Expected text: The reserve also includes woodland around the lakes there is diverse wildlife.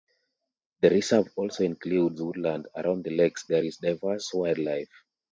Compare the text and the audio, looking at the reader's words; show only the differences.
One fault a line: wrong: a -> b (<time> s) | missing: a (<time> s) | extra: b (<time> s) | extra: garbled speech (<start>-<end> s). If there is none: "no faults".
no faults